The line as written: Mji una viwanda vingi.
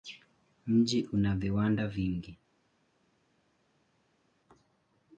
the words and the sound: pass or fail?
pass